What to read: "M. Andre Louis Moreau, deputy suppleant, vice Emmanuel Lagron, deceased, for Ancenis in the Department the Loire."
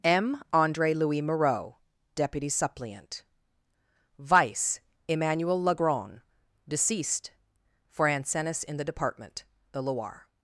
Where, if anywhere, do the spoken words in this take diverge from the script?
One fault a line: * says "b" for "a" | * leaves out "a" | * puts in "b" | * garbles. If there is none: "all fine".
all fine